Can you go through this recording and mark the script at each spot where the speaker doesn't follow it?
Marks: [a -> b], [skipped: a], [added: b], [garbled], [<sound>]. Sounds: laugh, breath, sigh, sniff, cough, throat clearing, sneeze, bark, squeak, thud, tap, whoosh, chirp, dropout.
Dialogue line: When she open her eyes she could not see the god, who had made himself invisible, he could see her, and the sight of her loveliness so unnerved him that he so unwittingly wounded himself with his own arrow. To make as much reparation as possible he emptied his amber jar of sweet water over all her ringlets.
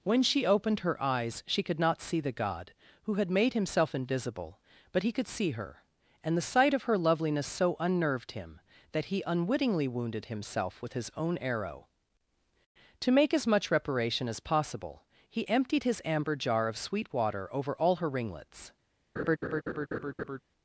When she [open -> opened] her eyes she could not see the god, who had made himself invisible, [added: but] he could see her, and the sight of her loveliness so unnerved him that he [skipped: so] unwittingly wounded himself with his own arrow. To make as much reparation as possible he emptied his amber jar of sweet water over all her ringlets. [laugh]